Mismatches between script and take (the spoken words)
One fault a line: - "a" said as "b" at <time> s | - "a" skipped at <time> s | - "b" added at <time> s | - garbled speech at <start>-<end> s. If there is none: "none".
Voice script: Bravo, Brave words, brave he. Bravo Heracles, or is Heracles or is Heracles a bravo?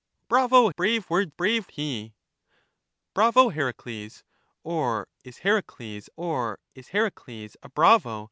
none